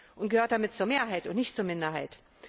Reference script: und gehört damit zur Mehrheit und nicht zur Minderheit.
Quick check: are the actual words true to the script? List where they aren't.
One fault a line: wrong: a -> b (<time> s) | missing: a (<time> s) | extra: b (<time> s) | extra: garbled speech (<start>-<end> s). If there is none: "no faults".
no faults